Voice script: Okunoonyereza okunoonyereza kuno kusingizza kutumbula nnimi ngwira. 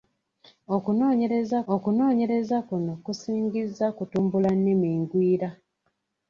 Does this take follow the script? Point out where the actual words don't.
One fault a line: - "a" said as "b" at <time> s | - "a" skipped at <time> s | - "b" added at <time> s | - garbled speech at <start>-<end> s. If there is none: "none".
none